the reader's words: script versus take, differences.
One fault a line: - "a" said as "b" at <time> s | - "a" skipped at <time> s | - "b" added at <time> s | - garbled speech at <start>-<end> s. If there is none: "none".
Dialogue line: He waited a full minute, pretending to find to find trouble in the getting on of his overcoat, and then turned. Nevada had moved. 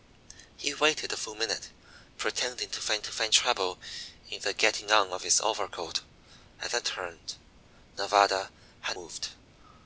none